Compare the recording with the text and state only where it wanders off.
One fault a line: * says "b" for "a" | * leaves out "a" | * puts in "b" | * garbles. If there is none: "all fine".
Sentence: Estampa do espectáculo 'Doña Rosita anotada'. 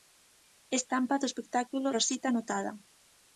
* leaves out "Doña"